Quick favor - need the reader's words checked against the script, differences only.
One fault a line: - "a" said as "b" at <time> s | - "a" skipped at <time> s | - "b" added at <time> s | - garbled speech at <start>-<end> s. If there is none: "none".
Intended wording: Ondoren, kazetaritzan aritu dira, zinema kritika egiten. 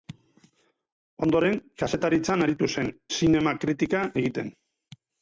- "dira" said as "zen" at 2.8 s